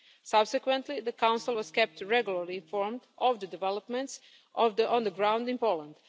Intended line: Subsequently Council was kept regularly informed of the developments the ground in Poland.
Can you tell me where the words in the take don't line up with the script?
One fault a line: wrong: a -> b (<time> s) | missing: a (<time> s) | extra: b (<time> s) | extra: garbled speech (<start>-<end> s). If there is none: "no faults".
extra: the (1.0 s)
extra: on (4.6 s)